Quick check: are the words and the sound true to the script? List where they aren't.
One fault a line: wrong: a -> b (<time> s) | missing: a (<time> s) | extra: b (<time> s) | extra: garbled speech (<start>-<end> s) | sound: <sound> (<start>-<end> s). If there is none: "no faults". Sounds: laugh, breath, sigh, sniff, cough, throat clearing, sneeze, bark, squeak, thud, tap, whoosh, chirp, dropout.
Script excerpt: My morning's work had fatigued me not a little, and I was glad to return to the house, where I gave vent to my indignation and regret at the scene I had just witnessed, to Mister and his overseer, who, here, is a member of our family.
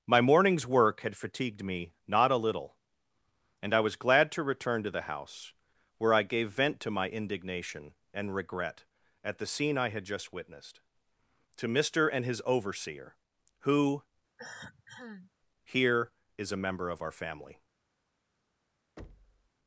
sound: cough (14.4-15.3 s)
sound: thud (19.0-19.5 s)